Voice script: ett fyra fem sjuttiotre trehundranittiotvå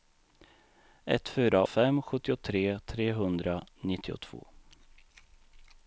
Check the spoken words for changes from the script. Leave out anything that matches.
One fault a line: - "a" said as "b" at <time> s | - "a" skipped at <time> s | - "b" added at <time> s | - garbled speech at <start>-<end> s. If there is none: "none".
none